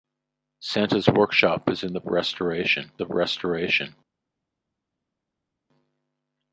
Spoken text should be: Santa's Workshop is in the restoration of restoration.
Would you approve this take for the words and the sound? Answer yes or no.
yes